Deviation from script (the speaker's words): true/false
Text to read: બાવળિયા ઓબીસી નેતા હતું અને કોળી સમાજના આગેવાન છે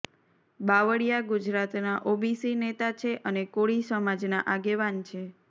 true